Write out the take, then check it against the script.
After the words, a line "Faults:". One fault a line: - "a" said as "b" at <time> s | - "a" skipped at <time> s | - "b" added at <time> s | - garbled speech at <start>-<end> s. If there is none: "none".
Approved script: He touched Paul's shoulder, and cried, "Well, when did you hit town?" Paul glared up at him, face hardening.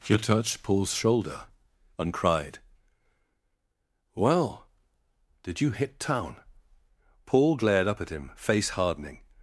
He touched Paul's shoulder, and cried, "Well, did you hit town?" Paul glared up at him, face hardening.
Faults:
- "when" skipped at 4.7 s